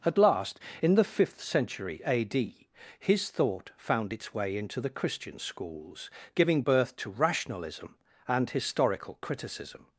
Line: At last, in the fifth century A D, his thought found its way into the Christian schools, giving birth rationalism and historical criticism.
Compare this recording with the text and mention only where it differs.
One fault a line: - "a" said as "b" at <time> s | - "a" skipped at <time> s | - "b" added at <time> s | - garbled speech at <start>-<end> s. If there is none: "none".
- "to" added at 7.0 s